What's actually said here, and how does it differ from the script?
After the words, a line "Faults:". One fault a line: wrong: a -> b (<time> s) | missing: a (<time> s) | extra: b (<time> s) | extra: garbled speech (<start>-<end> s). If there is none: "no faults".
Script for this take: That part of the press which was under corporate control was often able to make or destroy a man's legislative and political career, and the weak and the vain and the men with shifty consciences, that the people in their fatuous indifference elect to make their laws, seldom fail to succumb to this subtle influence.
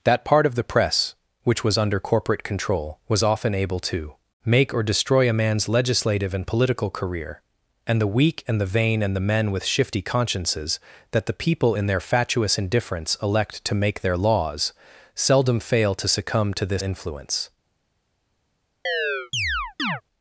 That part of the press which was under corporate control was often able to make or destroy a man's legislative and political career, and the weak and the vain and the men with shifty consciences, that the people in their fatuous indifference elect to make their laws, seldom fail to succumb to this influence.
Faults:
missing: subtle (16.8 s)